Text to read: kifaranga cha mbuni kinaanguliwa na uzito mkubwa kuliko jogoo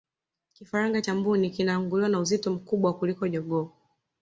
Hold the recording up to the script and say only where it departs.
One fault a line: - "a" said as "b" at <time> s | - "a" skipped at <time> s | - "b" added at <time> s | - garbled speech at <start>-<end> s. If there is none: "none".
none